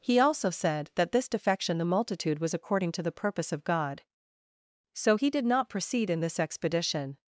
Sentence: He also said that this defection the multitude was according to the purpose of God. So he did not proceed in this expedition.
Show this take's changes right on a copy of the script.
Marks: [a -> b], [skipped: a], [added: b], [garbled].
He also said that this defection the multitude was according to the purpose of God. So he did not proceed in this expedition.